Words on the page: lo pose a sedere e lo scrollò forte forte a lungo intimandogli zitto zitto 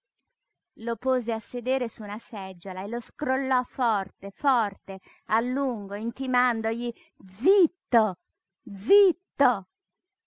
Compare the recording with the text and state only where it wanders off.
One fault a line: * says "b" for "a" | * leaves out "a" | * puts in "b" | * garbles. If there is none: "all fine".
* puts in "su una seggiola"